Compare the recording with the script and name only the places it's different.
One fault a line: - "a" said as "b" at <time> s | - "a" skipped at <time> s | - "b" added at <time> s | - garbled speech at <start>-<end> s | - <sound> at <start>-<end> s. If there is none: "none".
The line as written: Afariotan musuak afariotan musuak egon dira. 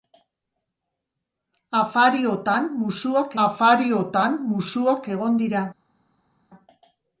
none